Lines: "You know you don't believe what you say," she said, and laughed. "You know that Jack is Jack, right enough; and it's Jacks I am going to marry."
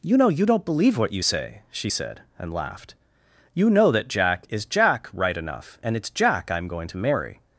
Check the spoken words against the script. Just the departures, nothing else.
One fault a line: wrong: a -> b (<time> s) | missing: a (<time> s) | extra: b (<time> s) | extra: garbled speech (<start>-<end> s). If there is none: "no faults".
wrong: Jacks -> Jack (6.1 s)